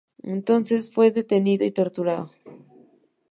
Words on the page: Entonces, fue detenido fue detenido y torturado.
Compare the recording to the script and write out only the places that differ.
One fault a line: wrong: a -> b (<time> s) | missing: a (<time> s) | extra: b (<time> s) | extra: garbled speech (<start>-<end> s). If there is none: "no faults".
missing: fue detenido (1.6 s)